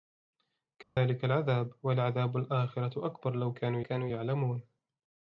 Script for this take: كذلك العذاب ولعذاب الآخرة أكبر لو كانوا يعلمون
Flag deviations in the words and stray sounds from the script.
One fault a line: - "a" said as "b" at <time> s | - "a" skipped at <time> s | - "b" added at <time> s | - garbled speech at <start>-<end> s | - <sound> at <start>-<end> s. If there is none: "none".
- dropout at 0.8-1.0 s
- "كانوا" added at 3.8 s